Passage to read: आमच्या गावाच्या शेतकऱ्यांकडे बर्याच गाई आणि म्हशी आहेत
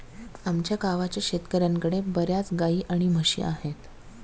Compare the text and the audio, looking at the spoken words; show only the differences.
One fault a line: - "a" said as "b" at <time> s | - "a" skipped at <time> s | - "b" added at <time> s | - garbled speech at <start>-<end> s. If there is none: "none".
none